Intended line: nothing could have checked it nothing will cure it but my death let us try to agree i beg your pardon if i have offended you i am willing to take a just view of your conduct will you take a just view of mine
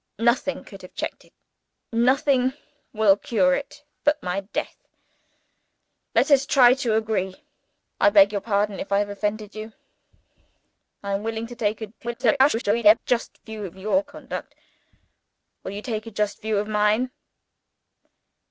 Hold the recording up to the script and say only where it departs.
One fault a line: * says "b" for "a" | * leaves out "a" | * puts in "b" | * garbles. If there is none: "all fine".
* garbles